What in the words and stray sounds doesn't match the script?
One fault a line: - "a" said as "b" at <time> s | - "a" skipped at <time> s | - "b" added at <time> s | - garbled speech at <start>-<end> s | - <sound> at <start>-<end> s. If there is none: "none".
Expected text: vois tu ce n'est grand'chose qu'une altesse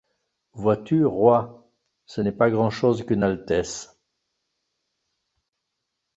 - "roi" added at 1.1 s
- "pas" added at 2.3 s